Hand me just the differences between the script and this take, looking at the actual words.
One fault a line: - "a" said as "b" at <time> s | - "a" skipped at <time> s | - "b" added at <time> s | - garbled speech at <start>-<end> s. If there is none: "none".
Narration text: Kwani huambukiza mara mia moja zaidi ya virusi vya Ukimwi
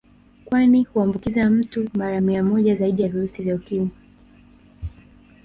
- "mtu" added at 1.5 s